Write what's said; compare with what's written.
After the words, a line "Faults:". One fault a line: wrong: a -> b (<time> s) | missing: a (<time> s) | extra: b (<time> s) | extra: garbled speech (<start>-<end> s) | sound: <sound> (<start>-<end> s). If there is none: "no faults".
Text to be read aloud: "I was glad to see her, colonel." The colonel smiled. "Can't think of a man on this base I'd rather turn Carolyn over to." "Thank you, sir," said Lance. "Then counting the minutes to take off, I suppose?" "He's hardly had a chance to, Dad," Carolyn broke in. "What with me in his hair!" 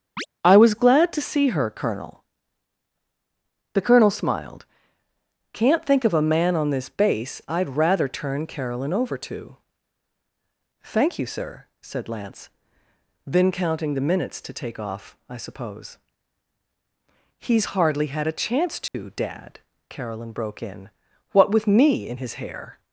"I was glad to see her, colonel." The colonel smiled. "Can't think of a man on this base I'd rather turn Carolyn over to." "Thank you, sir," said Lance. "Then counting the minutes to take off, I suppose?" "He's hardly had a chance to, Dad," Carolyn broke in. "What with me in his hair!"
Faults:
sound: chirp (0.2-0.3 s)
sound: dropout (18.9-18.9 s)